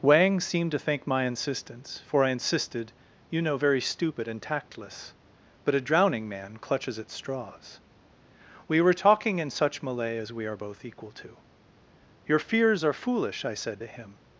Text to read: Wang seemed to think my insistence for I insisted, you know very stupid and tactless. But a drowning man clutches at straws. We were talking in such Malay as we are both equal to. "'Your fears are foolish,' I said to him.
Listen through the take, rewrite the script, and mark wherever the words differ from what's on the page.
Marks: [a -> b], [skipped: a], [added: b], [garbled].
Wang seemed to think my insistence for I insisted, you know very stupid and tactless. But a drowning man clutches at straws. We were talking in such Malay as we are both equal to. "'Your fears are foolish,' I said to him.